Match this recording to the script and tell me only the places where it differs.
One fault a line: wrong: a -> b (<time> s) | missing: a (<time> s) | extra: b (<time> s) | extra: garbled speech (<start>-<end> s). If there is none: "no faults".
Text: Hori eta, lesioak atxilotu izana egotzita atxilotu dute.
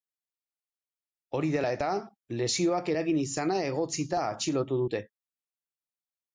extra: dela (1.6 s)
wrong: atxilotu -> eragin (2.9 s)